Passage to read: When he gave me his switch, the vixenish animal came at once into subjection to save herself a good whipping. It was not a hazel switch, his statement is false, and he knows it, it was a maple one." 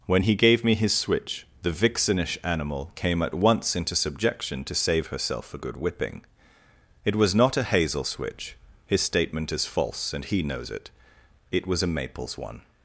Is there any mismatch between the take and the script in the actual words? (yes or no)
yes